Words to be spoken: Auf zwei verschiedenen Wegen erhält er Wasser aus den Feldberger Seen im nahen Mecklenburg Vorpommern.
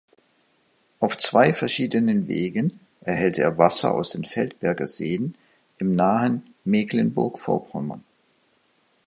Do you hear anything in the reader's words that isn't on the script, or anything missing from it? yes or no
no